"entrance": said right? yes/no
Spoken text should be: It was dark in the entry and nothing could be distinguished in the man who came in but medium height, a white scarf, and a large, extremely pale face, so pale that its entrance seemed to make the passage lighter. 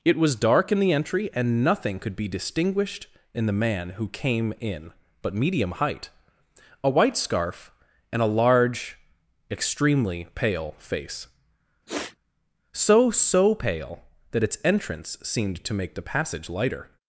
yes